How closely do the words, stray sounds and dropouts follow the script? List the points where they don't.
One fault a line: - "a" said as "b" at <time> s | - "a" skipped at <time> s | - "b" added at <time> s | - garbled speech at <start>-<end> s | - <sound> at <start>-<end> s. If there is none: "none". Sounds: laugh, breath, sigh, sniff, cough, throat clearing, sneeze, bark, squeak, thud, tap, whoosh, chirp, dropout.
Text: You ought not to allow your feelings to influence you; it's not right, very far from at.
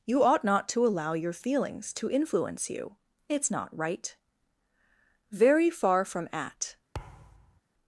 - thud at 6.9-7.6 s